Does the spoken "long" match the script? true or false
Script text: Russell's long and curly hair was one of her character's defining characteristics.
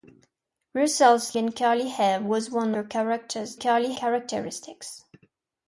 false